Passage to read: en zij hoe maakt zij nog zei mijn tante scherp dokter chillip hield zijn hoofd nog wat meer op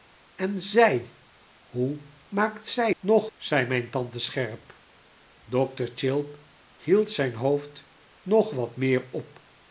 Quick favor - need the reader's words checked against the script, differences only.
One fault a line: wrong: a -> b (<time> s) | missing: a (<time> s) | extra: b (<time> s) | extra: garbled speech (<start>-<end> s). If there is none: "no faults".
no faults